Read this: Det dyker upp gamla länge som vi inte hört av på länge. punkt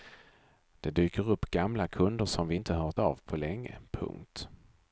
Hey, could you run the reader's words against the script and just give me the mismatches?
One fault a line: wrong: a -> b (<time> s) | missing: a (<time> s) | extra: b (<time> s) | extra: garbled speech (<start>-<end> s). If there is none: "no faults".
wrong: länge -> kunder (1.9 s)